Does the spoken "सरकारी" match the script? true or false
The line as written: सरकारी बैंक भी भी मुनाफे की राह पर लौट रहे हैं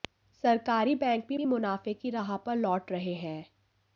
true